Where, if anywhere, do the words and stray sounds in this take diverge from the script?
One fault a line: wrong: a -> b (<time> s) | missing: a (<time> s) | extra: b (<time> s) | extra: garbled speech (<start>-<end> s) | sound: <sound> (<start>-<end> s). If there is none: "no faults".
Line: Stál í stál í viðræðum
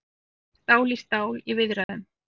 sound: dropout (1.8-1.9 s)